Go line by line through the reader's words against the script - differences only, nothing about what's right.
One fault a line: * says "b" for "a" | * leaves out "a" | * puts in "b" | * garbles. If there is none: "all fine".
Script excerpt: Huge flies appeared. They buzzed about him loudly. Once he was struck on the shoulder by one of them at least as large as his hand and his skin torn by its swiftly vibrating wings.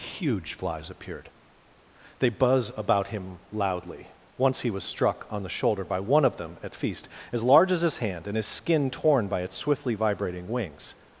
* says "buzz" for "buzzed"
* says "feast" for "least"